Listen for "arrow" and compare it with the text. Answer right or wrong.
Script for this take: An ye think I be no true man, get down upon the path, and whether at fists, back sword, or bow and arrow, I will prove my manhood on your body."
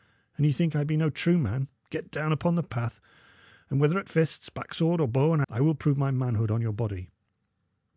wrong